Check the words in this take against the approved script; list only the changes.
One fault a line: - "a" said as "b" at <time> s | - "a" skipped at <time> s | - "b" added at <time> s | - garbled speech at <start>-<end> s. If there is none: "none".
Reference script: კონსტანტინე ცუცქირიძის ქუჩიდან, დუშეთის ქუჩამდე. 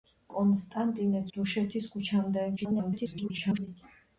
- "ცუცქირიძის ქუჩიდან" skipped at 1.2 s
- garbled speech at 2.6-3.7 s